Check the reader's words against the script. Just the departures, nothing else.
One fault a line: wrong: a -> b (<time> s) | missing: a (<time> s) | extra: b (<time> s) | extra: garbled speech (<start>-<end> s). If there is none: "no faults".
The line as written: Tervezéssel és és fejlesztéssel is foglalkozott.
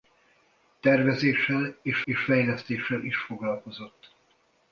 no faults